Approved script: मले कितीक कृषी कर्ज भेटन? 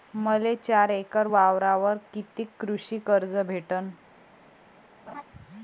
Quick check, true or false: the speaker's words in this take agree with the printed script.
false